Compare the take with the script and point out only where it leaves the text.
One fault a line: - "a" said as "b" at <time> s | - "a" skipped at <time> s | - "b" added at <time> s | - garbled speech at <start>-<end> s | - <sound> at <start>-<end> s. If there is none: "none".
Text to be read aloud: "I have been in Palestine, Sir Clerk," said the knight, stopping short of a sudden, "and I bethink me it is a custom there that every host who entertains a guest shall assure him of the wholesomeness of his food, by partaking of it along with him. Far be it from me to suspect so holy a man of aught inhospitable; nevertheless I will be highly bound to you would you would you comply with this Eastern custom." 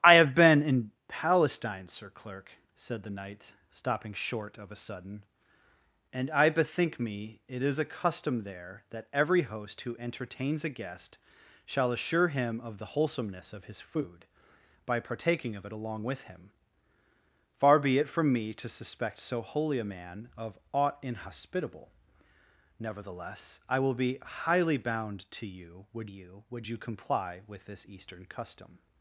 none